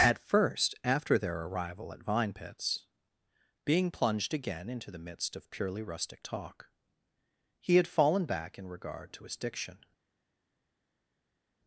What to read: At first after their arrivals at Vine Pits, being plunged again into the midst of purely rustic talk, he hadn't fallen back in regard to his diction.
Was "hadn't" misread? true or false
true